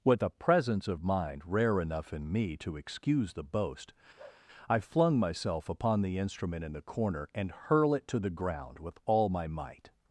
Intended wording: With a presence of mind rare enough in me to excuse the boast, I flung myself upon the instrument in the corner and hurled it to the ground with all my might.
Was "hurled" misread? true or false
true